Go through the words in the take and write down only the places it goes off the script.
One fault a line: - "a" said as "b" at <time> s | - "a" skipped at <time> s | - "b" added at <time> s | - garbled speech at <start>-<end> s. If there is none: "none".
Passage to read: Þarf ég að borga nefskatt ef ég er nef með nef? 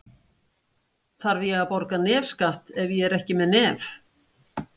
- "nef" said as "ekki" at 3.2 s